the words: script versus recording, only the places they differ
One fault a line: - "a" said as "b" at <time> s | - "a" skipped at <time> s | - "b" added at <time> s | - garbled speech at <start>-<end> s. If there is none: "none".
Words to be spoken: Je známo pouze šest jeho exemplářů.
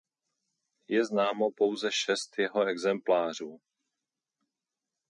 none